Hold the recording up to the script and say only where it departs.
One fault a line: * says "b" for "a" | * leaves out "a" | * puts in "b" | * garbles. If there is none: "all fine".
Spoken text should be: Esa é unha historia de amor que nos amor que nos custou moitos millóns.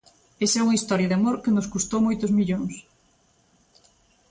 * leaves out "amor que nos"